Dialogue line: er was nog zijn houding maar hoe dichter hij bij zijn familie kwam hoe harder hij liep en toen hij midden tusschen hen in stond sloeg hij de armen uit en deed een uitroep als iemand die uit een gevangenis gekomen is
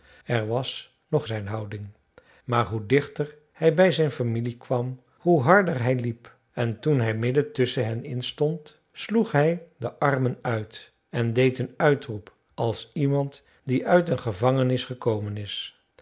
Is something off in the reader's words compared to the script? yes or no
no